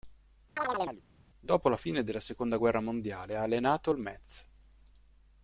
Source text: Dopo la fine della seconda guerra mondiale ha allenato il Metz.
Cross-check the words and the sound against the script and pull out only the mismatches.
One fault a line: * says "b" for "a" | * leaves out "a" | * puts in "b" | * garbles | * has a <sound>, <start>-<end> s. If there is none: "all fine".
* has a chirp, 0.6-1.0 s